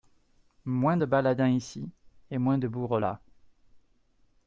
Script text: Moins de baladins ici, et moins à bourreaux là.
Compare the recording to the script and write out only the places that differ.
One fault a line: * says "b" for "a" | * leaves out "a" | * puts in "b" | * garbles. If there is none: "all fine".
* says "de" for "à"